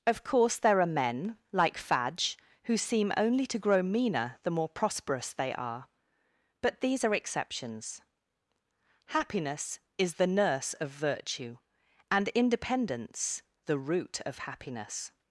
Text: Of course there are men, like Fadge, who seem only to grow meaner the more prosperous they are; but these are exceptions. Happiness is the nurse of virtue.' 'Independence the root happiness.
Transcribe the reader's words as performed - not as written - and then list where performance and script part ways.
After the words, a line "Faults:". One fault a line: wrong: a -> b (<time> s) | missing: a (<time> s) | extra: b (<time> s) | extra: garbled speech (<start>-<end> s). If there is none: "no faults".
Of course there are men, like Fadge, who seem only to grow meaner the more prosperous they are; but these are exceptions. Happiness is the nurse of virtue.' 'And independence the root of happiness.
Faults:
extra: And (12.1 s)
extra: of (14.2 s)